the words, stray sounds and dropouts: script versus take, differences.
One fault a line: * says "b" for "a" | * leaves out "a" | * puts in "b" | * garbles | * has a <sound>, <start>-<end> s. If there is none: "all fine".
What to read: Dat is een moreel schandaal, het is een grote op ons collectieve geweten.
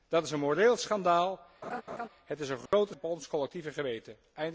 * has a laugh, 1.6-2.1 s
* has a dropout, 2.7-2.7 s